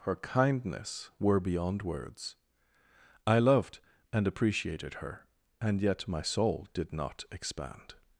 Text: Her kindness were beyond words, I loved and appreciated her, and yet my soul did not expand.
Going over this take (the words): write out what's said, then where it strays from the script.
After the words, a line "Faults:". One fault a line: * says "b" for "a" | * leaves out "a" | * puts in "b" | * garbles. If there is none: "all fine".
Her kindness were beyond words, I loved and appreciated her, and yet my soul did not expand.
Faults:
all fine